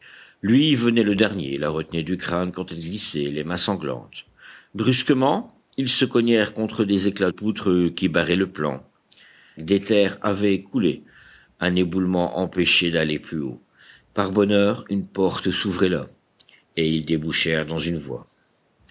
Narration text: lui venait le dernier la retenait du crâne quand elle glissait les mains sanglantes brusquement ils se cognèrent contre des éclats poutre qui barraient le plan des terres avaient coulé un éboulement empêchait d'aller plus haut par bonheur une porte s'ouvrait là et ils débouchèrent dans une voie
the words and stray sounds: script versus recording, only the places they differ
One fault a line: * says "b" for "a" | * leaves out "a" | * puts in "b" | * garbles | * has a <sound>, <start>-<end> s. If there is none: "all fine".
all fine